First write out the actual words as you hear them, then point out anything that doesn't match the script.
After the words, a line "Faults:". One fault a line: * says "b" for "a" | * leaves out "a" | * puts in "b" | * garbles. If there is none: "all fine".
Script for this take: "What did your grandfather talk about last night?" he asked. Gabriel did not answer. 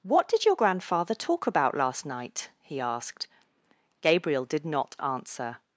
"What did your grandfather talk about last night?" he asked. Gabriel did not answer.
Faults:
all fine